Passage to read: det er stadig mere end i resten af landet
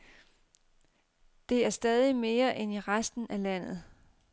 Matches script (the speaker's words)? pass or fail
pass